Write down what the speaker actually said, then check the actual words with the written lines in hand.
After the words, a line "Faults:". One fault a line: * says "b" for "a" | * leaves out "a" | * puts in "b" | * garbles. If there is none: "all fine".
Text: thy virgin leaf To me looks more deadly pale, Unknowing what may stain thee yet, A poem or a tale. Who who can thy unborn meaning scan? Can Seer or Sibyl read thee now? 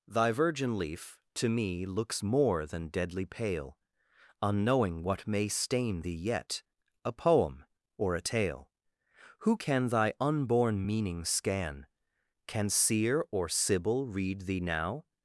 thy virgin leaf To me looks more than deadly pale, Unknowing what may stain thee yet, A poem or a tale. Who can thy unborn meaning scan? Can Seer or Sibyl read thee now?
Faults:
* puts in "than"
* leaves out "who"